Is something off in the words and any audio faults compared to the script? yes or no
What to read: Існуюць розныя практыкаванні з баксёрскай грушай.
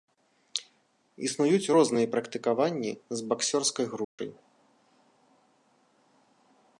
yes